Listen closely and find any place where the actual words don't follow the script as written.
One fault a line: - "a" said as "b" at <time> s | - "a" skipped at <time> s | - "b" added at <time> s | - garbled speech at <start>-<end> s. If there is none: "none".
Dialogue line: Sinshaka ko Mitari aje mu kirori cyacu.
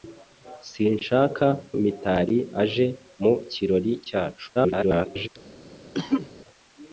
- "ko" skipped at 1.4 s
- garbled speech at 4.5-5.3 s